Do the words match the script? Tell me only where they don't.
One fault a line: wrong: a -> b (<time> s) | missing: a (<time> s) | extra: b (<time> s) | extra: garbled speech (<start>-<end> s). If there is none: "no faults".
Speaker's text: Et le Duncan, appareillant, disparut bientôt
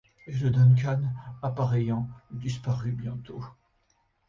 no faults